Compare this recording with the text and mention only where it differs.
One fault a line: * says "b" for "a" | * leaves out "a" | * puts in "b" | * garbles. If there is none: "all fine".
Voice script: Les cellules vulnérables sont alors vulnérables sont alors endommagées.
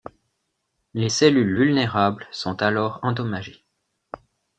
* leaves out "vulnérables sont alors"